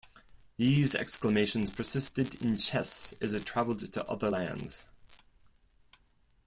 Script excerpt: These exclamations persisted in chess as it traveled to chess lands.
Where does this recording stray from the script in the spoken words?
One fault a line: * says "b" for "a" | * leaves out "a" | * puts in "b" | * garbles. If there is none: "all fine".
* says "other" for "chess"